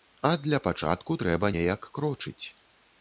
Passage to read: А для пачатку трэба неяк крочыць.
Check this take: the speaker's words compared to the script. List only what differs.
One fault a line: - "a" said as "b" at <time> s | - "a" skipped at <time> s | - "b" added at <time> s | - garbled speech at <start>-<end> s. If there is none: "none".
none